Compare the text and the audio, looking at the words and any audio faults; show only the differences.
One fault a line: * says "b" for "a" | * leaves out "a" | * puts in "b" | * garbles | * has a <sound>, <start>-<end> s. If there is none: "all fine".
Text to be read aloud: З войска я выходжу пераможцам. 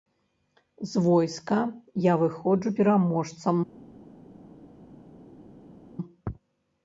all fine